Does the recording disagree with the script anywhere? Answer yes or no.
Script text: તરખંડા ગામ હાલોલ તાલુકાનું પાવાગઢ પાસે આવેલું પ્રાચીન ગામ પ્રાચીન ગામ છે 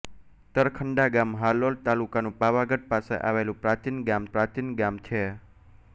no